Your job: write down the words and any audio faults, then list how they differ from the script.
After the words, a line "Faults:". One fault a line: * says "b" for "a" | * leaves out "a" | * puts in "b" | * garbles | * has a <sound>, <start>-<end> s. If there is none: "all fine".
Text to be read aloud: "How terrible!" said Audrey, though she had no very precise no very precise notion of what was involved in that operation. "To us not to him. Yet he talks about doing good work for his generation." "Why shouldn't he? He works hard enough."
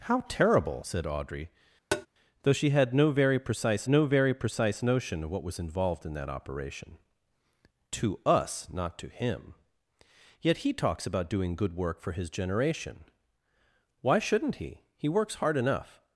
"How terrible!" said Audrey, though she had no very precise no very precise notion of what was involved in that operation. "To us not to him. Yet he talks about doing good work for his generation." "Why shouldn't he? He works hard enough."
Faults:
* has a tap, 1.9-2.1 s